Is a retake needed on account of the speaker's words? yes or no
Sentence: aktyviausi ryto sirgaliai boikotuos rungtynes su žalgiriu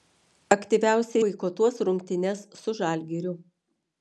yes